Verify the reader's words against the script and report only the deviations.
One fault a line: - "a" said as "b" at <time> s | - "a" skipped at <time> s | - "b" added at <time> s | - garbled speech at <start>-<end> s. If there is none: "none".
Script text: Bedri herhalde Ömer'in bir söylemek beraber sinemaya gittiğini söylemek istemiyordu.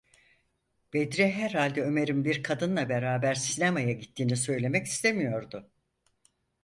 - "söylemek" said as "kadınla" at 2.4 s